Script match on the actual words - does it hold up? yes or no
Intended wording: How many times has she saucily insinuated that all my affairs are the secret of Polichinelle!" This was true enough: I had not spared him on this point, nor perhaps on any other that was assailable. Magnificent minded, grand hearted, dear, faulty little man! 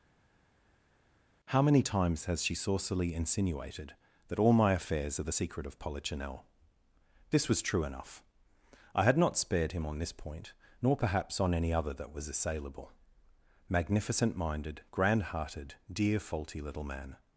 yes